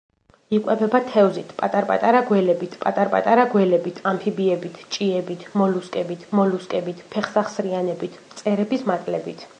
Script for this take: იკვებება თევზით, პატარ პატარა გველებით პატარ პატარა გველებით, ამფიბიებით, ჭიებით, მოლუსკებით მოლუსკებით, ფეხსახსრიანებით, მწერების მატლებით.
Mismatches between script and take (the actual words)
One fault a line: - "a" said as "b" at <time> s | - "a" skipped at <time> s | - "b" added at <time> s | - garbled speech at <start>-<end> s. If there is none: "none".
none